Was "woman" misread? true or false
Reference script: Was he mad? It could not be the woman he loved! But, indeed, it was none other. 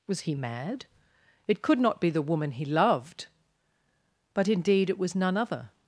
false